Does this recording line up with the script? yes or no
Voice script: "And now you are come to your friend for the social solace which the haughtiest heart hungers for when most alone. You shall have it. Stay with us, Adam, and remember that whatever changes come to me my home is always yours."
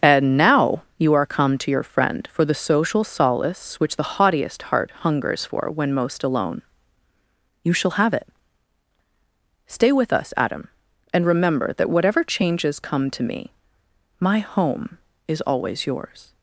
yes